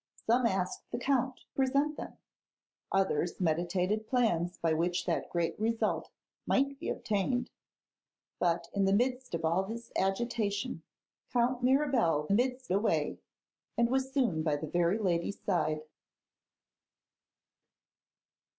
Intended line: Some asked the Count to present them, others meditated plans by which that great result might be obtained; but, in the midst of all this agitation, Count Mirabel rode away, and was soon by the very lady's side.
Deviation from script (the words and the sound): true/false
true